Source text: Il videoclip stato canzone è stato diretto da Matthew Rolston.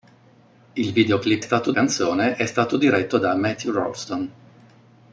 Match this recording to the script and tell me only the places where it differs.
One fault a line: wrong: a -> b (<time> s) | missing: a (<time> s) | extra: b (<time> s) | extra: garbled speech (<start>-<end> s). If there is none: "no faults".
no faults